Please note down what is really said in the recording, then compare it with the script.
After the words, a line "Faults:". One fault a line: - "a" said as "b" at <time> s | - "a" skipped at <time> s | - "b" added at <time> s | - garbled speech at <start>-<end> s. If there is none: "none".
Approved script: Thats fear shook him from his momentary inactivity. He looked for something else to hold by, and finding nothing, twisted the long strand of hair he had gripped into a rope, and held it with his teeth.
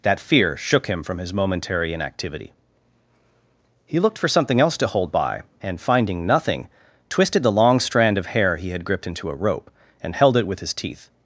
That fear shook him from his momentary inactivity. He looked for something else to hold by, and finding nothing, twisted the long strand of hair he had gripped into a rope, and held it with his teeth.
Faults:
- "Thats" said as "That" at 0.0 s